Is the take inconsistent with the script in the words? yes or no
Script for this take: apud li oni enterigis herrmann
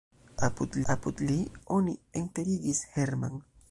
yes